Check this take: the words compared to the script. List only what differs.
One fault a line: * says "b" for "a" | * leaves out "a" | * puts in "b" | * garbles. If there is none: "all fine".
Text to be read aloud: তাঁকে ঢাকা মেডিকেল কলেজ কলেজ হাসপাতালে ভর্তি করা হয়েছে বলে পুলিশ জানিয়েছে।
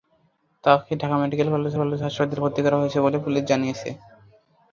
all fine